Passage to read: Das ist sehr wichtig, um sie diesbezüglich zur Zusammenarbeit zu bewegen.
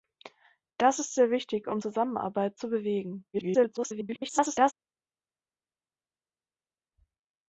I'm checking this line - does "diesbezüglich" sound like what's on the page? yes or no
no